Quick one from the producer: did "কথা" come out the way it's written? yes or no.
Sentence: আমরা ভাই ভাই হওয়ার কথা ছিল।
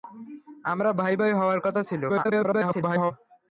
yes